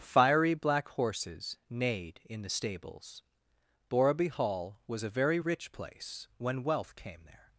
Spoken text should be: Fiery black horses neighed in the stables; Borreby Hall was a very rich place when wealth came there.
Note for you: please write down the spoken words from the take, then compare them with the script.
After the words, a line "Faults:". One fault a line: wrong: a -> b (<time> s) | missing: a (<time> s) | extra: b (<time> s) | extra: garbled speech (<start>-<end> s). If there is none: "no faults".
Fiery black horses neighed in the stables; Borreby Hall was a very rich place when wealth came there.
Faults:
no faults